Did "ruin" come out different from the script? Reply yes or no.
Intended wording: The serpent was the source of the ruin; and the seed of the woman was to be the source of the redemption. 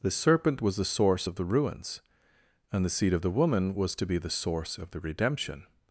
yes